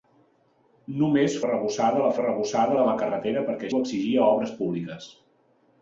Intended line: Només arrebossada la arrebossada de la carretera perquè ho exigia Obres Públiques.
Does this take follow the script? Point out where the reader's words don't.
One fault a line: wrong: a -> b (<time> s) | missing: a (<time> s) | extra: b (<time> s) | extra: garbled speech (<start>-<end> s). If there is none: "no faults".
no faults